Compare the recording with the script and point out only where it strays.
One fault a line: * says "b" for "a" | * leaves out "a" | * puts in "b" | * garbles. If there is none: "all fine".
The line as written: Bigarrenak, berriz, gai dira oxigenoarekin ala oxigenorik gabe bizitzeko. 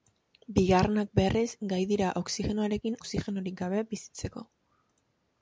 * leaves out "ala"